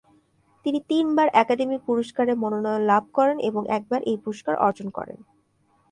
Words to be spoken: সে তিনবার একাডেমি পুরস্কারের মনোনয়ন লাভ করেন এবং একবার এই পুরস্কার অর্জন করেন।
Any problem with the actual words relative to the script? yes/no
yes